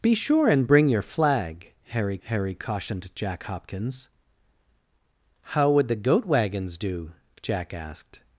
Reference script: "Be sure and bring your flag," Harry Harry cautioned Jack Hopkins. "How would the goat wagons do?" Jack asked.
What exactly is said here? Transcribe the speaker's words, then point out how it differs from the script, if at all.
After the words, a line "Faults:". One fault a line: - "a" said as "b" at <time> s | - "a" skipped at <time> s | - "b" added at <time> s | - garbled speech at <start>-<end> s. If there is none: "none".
"Be sure and bring your flag," Harry Harry cautioned Jack Hopkins. "How would the goat wagons do?" Jack asked.
Faults:
none